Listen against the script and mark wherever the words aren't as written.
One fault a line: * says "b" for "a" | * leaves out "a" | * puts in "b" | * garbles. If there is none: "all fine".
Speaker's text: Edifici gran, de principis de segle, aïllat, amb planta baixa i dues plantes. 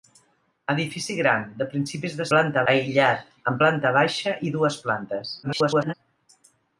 * says "planta" for "segle"
* garbles